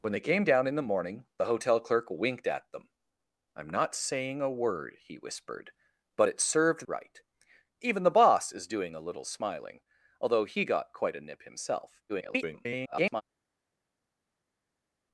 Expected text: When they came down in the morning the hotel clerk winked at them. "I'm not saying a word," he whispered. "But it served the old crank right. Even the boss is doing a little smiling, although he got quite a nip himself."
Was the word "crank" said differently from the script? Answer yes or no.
yes